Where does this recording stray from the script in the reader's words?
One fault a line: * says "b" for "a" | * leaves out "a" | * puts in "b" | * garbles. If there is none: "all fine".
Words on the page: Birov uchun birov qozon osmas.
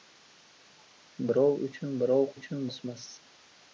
* says "uchun" for "qozon"